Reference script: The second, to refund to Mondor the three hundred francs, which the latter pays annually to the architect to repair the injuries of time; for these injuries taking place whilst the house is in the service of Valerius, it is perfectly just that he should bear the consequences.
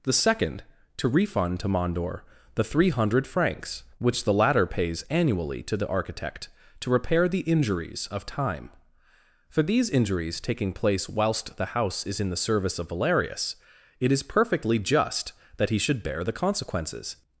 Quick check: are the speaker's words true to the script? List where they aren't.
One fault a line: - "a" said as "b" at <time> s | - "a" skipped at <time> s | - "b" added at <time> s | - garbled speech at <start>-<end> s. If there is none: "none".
none